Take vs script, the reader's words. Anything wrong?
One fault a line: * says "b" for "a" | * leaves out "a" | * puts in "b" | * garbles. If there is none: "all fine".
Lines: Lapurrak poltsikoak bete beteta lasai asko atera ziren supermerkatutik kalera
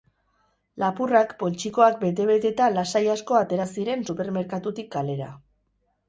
all fine